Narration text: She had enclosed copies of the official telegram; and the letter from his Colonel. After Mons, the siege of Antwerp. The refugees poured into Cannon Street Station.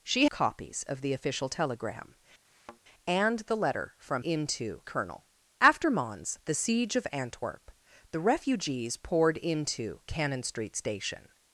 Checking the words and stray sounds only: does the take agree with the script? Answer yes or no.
no